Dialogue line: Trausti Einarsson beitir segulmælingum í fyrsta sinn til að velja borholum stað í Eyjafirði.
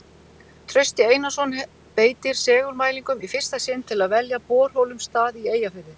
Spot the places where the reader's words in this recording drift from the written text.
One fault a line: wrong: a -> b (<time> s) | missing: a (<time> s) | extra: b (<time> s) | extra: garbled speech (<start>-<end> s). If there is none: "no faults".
no faults